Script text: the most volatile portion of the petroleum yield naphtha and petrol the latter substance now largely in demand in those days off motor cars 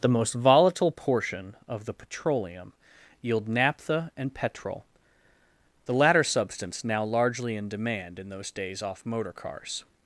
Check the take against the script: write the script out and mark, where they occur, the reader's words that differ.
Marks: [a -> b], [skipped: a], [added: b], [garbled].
the most volatile portion of the petroleum yield naphtha and petrol the latter substance now largely in demand in those days off motor cars